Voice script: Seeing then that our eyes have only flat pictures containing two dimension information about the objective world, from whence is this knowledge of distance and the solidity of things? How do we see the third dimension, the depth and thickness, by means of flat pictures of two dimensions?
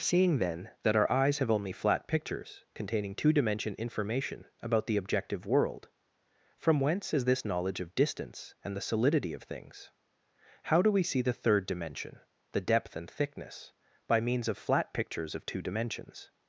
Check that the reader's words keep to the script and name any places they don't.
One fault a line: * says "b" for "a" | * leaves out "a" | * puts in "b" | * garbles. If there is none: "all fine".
all fine